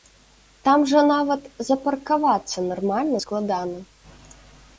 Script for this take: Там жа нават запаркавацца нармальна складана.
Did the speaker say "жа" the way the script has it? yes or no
yes